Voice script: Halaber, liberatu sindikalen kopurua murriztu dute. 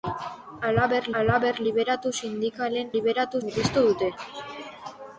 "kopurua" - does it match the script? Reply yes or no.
no